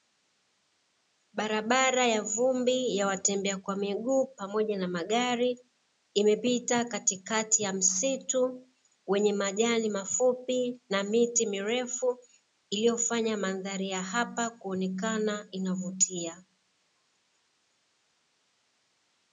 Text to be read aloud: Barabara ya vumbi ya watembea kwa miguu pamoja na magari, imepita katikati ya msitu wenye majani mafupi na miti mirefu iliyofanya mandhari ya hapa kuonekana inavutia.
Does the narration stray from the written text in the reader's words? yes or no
no